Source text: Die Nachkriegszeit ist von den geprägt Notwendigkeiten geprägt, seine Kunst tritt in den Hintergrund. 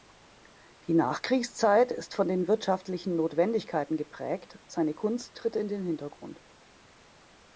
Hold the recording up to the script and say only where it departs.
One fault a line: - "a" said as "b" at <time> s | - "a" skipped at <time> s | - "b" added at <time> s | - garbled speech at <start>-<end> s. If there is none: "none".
- "geprägt" said as "wirtschaftlichen" at 2.5 s